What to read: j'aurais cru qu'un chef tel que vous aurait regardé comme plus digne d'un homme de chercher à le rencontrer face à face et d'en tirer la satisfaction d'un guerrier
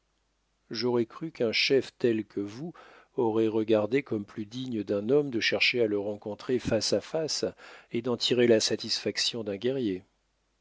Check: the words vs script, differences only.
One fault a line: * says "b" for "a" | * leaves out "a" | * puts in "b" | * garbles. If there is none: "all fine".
all fine